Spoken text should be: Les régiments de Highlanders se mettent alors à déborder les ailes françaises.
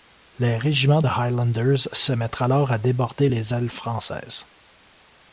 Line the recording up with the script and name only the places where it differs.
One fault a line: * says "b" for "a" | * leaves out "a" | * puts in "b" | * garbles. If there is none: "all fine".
all fine